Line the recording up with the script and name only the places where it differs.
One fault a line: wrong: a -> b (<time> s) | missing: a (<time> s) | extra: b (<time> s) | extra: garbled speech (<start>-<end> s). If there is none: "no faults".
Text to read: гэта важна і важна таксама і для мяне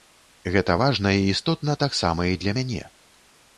wrong: важна -> істотна (1.3 s)